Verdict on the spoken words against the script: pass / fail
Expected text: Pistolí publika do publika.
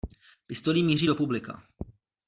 fail